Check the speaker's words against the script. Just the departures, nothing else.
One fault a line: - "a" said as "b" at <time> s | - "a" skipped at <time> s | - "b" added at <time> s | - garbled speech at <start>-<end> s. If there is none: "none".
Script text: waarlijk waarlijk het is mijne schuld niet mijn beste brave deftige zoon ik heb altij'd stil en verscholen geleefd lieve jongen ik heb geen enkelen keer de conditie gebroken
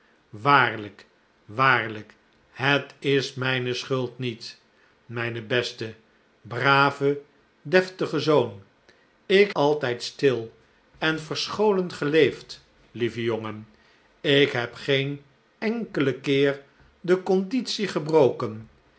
- "heb" skipped at 9.5 s